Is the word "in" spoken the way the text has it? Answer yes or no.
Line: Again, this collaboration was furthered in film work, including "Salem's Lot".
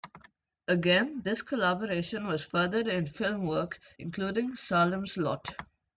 yes